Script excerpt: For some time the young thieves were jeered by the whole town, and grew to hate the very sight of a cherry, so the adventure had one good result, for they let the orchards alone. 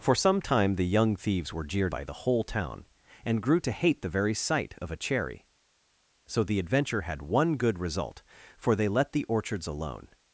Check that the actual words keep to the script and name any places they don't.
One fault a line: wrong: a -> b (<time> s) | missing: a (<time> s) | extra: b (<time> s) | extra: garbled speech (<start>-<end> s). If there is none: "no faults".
no faults